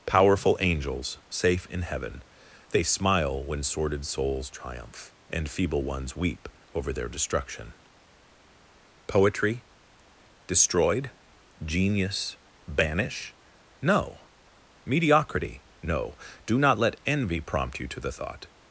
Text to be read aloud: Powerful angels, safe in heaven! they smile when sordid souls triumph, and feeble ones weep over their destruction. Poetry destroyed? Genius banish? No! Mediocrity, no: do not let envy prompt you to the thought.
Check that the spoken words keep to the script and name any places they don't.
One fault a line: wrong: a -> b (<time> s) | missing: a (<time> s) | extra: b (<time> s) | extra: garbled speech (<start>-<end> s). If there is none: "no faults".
no faults